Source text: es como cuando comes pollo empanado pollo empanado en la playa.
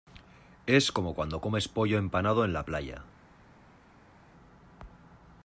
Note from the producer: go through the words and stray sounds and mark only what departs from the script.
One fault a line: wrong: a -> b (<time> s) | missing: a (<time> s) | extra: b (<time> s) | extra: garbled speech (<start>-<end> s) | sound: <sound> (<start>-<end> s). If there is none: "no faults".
missing: pollo empanado (2.5 s)